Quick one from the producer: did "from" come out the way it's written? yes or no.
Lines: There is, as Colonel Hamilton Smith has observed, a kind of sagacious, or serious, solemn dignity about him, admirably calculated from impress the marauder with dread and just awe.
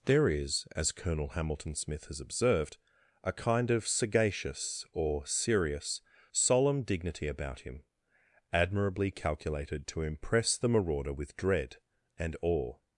no